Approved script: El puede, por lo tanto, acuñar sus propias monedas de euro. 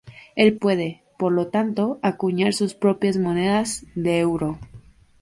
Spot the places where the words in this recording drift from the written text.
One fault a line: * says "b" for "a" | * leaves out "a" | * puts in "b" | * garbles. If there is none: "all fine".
all fine